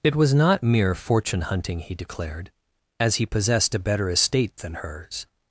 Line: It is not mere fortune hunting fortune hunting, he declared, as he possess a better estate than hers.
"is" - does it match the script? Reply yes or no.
no